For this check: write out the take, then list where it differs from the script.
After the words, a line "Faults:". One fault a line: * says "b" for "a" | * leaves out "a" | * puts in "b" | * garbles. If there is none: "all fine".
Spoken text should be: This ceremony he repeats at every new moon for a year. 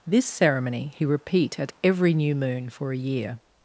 This ceremony he repeat at every new moon for a year.
Faults:
* says "repeat" for "repeats"